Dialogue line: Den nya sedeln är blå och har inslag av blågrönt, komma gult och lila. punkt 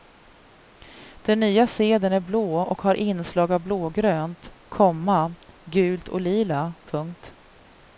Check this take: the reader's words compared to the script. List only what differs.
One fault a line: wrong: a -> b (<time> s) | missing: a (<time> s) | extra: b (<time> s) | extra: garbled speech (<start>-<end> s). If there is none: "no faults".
no faults